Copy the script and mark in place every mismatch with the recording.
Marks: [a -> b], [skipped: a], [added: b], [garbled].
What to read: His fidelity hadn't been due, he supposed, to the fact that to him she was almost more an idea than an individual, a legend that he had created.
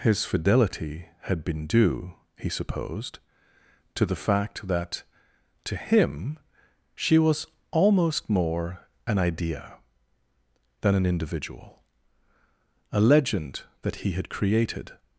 His fidelity [hadn't -> had] been due, he supposed, to the fact that to him she was almost more an idea than an individual, a legend that he had created.